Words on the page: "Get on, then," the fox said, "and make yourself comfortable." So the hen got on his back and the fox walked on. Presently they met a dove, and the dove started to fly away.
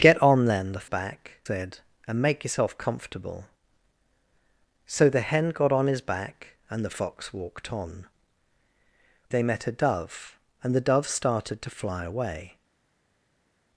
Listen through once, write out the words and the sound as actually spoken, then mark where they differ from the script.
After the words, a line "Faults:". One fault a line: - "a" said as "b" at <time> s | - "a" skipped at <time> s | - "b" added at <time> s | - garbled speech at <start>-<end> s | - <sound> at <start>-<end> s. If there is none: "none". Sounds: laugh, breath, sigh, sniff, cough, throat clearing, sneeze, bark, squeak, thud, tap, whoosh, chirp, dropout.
"Get on, then," the back said, "and make yourself comfortable." So the hen got on his back and the fox walked on. They met a dove, and the dove started to fly away.
Faults:
- "fox" said as "back" at 0.8 s
- "Presently" skipped at 8.1 s